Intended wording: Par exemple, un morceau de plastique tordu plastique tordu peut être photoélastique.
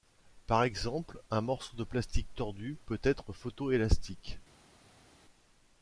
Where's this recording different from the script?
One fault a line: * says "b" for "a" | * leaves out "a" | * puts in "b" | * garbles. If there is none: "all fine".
* leaves out "plastique tordu"